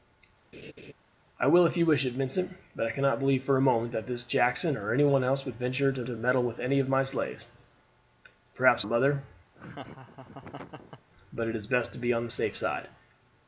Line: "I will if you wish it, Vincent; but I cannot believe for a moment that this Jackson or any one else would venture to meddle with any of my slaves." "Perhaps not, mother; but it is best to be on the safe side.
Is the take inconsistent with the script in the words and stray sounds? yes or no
yes